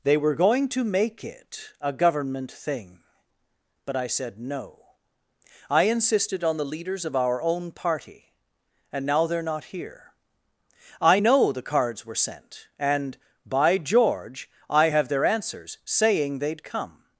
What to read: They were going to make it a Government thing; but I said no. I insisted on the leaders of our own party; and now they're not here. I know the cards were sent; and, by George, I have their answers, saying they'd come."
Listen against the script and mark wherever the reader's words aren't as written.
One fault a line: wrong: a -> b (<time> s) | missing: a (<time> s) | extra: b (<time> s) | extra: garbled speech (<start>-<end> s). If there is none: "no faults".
no faults